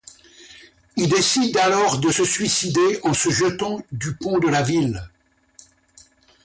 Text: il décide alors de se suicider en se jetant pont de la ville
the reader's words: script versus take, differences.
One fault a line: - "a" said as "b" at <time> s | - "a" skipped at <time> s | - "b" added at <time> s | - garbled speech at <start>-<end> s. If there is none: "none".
- "du" added at 3.9 s